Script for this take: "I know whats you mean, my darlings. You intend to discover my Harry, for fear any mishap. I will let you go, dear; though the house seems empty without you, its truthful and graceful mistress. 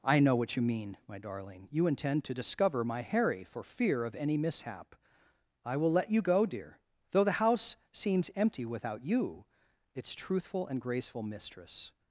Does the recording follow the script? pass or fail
fail